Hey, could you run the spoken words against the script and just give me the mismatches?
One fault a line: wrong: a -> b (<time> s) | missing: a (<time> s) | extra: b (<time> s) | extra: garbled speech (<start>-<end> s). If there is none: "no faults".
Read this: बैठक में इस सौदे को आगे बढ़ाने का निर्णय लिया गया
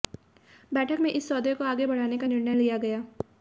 no faults